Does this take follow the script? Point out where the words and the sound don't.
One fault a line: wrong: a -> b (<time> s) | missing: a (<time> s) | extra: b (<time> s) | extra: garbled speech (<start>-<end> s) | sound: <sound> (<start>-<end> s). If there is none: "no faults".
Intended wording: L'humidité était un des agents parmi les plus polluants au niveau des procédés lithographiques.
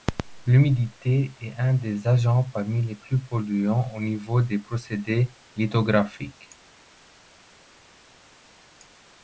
wrong: était -> est (1.4 s)